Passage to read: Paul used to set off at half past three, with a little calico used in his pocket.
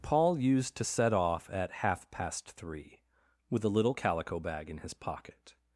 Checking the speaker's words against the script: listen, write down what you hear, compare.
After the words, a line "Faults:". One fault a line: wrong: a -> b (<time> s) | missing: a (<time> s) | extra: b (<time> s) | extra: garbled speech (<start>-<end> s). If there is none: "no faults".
Paul used to set off at half past three, with a little calico bag in his pocket.
Faults:
wrong: used -> bag (4.4 s)